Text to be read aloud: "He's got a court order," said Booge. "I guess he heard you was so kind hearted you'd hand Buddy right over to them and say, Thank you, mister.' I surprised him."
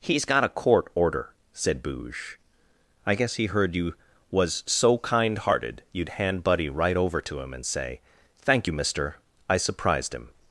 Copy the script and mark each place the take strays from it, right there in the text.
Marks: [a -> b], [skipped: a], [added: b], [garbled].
"He's got a court order," said Booge. "I guess he heard you was so kind hearted you'd hand Buddy right over to [them -> him] and say, Thank you, mister.' I surprised him."